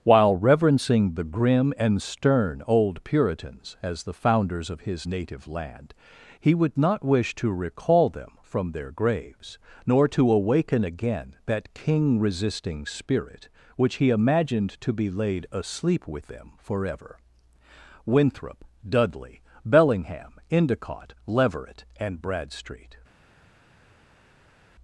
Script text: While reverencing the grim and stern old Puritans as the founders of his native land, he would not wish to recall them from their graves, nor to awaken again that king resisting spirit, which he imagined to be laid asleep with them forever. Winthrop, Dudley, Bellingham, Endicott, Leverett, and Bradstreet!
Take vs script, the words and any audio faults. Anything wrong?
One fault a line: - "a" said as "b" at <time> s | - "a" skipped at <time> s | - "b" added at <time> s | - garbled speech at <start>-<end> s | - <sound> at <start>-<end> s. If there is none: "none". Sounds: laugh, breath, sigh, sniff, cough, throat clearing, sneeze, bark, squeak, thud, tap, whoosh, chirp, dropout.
none